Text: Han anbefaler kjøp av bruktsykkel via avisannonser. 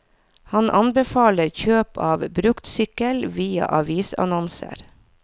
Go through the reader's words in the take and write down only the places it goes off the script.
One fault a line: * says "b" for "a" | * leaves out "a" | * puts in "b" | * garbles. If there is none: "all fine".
all fine